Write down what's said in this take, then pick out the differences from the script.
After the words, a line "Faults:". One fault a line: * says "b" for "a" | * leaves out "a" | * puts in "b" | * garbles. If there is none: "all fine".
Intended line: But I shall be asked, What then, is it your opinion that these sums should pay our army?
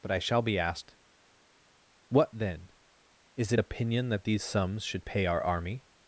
But I shall be asked, What then, is it opinion that these sums should pay our army?
Faults:
* leaves out "your"